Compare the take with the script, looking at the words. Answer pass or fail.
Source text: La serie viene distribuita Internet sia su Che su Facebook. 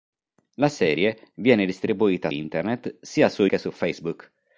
pass